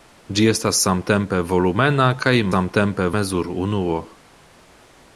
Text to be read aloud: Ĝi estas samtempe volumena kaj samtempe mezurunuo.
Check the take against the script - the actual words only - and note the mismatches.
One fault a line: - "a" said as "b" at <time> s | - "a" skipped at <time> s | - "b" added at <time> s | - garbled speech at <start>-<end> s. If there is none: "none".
none